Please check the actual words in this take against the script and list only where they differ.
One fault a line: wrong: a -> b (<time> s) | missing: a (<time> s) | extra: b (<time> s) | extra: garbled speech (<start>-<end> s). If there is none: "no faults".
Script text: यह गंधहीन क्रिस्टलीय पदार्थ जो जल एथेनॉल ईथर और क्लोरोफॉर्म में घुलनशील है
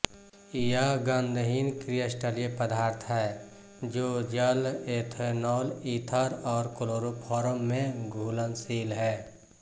extra: है (3.1 s)